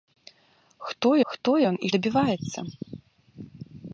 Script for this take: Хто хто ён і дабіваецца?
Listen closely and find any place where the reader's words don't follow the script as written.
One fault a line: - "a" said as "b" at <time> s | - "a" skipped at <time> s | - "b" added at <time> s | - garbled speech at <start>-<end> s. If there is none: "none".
none